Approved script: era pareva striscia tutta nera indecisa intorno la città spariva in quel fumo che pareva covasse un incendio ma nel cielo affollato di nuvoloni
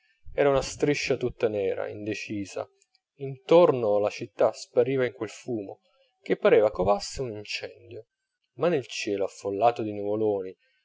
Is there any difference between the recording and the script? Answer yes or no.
yes